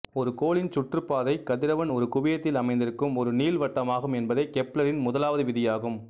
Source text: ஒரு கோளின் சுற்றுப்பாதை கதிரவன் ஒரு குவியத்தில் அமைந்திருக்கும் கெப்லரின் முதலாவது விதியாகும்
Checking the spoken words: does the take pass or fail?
fail